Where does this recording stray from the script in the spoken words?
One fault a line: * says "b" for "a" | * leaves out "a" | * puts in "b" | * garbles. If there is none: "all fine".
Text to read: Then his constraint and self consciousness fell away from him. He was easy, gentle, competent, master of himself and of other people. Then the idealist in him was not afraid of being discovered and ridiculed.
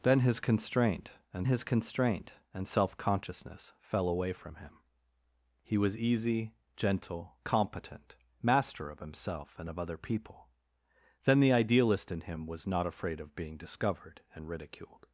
* puts in "his constraint and"